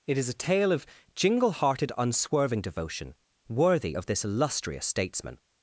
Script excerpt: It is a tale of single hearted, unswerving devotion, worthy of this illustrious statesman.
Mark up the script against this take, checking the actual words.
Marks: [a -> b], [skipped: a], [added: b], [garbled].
It is a tale of [single -> jingle] hearted, unswerving devotion, worthy of this illustrious statesman.